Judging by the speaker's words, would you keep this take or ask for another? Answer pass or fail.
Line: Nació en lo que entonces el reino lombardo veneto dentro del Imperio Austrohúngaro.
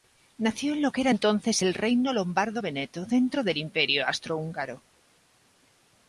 fail